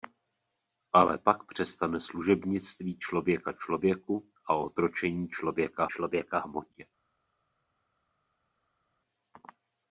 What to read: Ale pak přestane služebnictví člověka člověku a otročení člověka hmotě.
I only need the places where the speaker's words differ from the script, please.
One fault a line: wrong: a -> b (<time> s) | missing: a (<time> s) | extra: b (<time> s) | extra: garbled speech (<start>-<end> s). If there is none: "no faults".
extra: člověka (5.9 s)